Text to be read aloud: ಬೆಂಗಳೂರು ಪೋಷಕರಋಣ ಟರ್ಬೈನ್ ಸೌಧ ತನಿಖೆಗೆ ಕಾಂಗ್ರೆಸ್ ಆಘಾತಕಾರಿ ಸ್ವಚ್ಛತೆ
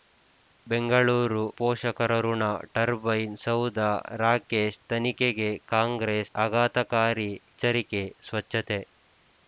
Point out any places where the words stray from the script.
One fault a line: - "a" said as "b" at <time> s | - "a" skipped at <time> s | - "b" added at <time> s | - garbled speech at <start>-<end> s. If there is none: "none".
- "ರಾಕೇಶ್" added at 4.2 s
- "ಎಚ್ಚರಿಕೆ" added at 7.4 s